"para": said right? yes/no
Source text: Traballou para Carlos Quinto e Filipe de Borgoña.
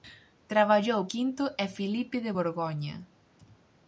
no